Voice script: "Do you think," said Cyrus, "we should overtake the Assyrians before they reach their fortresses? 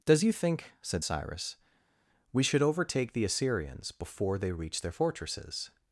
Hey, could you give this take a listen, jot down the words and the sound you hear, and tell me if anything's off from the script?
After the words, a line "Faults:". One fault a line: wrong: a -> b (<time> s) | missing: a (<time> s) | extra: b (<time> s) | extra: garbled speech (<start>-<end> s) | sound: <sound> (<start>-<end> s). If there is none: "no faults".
"Does you think," said Cyrus, "we should overtake the Assyrians before they reach their fortresses?
Faults:
wrong: Do -> Does (0.1 s)